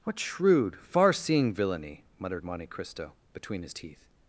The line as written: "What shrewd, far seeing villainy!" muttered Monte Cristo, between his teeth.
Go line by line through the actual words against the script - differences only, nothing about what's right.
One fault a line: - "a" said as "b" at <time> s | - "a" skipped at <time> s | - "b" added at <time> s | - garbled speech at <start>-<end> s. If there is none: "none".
none